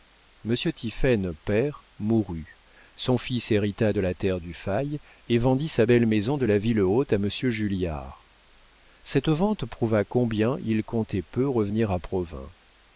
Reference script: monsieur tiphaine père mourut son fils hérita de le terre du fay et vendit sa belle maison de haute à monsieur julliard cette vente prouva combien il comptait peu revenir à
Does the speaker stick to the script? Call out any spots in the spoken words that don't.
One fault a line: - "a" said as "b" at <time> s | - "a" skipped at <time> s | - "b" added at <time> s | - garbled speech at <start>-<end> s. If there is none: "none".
- "le" said as "la" at 4.0 s
- "la ville" added at 6.4 s